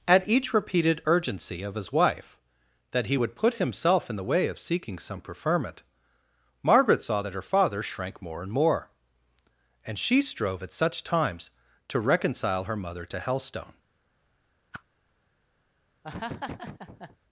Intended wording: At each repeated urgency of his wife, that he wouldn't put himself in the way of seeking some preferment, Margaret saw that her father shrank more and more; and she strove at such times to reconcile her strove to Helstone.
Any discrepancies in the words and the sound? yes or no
yes